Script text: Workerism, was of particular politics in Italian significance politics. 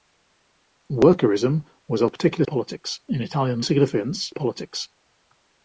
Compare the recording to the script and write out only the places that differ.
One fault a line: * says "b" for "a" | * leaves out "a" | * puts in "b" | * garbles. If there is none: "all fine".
all fine